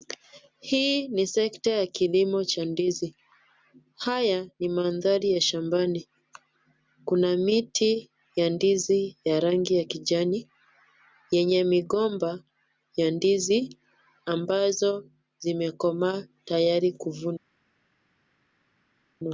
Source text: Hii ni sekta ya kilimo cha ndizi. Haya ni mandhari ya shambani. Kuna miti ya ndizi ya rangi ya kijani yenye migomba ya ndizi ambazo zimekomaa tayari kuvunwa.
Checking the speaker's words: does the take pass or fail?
pass